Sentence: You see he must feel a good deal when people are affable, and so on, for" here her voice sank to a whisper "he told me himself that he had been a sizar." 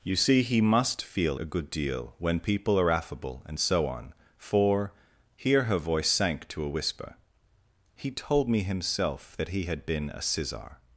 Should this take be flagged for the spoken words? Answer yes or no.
no